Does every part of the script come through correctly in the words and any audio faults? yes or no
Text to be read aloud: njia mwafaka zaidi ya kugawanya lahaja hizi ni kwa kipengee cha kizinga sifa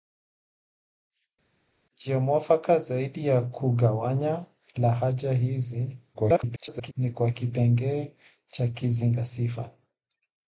no